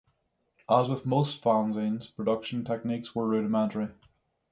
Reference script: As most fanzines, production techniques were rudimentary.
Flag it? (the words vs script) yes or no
yes